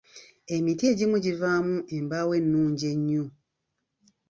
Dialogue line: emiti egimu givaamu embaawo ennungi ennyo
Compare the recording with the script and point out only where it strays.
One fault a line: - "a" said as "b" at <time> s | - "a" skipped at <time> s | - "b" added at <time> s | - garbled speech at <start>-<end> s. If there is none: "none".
none